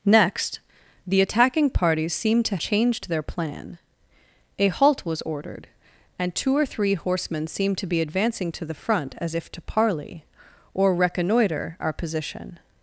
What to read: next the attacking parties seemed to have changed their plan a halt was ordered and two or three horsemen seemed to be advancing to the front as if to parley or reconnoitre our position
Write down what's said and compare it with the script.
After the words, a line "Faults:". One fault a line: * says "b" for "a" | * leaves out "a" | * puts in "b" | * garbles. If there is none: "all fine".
next the attacking parties seemed to changed their plan a halt was ordered and two or three horsemen seemed to be advancing to the front as if to parley or reconnoitre our position
Faults:
* leaves out "have"